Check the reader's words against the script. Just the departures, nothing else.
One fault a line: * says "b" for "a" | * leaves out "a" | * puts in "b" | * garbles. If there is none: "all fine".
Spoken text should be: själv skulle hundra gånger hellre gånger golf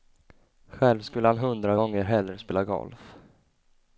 * puts in "han"
* says "spela" for "gånger"